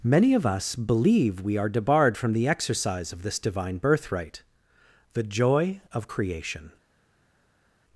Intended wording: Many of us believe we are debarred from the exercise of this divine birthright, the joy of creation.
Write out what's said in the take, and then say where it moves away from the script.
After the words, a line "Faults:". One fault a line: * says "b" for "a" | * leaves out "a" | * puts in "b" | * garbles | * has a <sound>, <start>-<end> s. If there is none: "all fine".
Many of us believe we are debarred from the exercise of this divine birthright, the joy of creation.
Faults:
all fine